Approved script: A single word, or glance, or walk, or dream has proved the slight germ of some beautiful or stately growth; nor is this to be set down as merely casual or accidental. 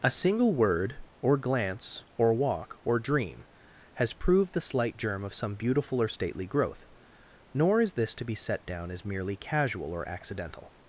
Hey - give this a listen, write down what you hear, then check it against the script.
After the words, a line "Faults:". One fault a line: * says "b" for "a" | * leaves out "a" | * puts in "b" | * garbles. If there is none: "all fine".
A single word, or glance, or walk, or dream has proved the slight germ of some beautiful or stately growth; nor is this to be set down as merely casual or accidental.
Faults:
all fine